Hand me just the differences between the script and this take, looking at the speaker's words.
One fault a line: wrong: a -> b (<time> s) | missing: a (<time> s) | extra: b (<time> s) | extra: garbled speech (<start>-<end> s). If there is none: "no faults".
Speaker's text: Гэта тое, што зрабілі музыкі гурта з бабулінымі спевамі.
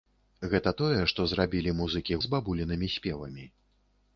missing: гурта (2.2 s)